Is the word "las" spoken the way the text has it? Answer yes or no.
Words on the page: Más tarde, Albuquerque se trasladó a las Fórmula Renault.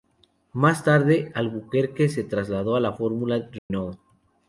no